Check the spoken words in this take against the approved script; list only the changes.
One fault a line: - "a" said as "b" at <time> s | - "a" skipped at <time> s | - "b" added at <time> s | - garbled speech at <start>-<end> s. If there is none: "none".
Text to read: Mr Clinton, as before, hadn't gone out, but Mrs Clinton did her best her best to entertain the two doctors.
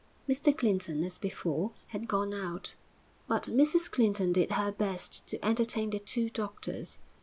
- "hadn't" said as "had" at 1.9 s
- "her best" skipped at 5.3 s